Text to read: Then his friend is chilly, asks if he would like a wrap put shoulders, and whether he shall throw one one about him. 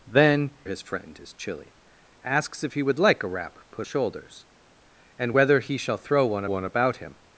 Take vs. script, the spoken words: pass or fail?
pass